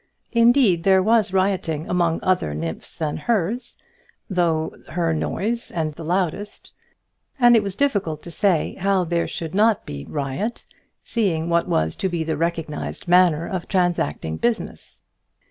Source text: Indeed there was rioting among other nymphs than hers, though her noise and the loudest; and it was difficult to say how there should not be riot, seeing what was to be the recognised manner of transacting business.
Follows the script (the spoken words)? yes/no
yes